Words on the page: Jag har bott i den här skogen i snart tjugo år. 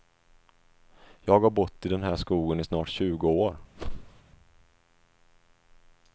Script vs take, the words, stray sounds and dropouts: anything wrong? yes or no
yes